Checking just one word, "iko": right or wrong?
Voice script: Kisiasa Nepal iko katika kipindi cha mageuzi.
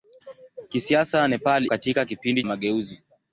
wrong